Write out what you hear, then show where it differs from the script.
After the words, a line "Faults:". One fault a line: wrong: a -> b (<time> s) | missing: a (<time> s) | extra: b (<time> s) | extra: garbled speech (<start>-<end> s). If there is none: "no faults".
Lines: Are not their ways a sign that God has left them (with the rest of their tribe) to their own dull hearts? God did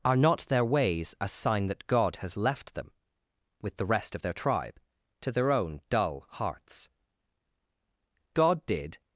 Are not their ways a sign that God has left them (with the rest of their tribe) to their own dull hearts? God did
Faults:
no faults